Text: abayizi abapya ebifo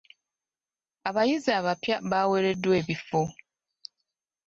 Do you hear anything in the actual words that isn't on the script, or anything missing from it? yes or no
yes